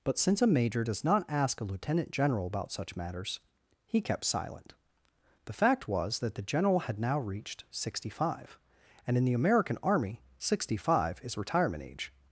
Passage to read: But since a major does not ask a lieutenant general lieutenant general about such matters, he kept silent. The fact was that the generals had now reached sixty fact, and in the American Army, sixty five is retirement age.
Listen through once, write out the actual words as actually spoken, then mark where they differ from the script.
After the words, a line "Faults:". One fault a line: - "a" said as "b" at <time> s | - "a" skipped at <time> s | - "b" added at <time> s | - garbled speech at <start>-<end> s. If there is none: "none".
But since a major does not ask a lieutenant general about such matters, he kept silent. The fact was that the general had now reached sixty five, and in the American Army, sixty five is retirement age.
Faults:
- "lieutenant general" skipped at 2.5 s
- "generals" said as "general" at 6.4 s
- "fact" said as "five" at 8.1 s